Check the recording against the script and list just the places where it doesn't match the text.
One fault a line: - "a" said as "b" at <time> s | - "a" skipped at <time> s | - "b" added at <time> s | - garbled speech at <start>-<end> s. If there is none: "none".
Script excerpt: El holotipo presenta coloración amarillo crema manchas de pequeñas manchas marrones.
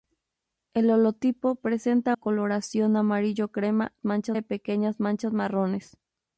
none